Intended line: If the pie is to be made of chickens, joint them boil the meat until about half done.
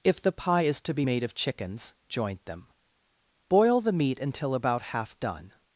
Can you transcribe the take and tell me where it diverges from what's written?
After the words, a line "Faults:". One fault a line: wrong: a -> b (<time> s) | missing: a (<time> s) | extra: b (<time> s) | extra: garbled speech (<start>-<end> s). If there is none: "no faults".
If the pie is to be made of chickens, joint them boil the meat until about half done.
Faults:
no faults